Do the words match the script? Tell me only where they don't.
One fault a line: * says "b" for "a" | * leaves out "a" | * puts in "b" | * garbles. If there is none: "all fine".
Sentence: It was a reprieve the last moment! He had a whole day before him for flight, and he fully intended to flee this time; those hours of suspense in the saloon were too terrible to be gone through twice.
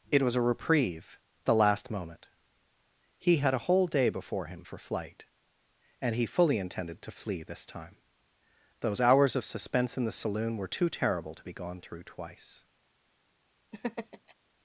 all fine